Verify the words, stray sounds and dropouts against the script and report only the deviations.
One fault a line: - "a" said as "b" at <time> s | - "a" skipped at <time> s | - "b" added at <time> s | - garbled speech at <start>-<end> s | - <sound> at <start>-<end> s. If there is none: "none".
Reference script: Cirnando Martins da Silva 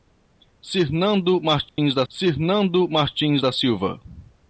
- dropout at 1.7-1.8 s
- "cirnando Martins da" added at 2.1 s